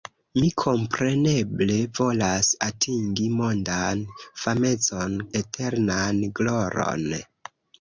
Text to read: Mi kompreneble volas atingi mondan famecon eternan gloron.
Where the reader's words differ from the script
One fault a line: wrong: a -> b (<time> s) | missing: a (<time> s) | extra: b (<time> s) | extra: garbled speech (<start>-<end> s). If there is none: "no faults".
no faults